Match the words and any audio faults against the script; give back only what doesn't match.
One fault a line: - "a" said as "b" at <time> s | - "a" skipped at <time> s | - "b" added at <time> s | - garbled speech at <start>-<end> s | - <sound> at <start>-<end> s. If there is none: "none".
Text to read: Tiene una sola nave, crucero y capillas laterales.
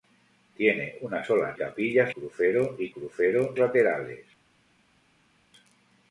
- "nave" said as "capillas" at 1.5 s
- "capillas" said as "crucero" at 2.9 s